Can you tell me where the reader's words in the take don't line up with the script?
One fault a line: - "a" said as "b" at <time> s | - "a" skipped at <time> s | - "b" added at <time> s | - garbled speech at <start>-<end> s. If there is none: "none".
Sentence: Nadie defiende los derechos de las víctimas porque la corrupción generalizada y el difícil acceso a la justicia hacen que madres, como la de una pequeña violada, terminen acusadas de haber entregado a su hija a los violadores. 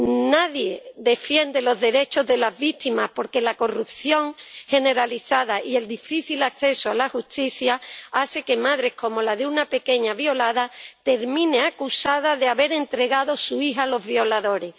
none